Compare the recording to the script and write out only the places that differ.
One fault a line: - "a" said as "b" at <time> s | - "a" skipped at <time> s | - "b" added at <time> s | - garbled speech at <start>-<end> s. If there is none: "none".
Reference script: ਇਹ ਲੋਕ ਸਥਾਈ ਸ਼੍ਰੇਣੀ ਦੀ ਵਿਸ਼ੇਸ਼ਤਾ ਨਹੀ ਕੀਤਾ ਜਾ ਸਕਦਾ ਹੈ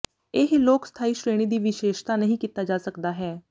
none